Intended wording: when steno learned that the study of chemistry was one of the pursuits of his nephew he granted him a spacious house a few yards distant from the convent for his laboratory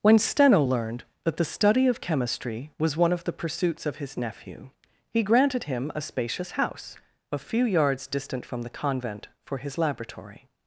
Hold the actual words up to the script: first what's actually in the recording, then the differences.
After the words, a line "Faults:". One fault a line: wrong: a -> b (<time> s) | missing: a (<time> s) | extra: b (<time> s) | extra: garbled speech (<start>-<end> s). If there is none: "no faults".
when steno learned that the study of chemistry was one of the pursuits of his nephew he granted him a spacious house a few yards distant from the convent for his laboratory
Faults:
no faults